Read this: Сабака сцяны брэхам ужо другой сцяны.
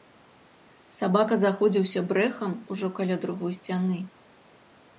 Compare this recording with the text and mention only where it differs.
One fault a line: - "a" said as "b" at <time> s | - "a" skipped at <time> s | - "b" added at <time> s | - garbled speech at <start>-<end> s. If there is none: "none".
- "сцяны" said as "заходзіўся" at 1.4 s
- "каля" added at 3.0 s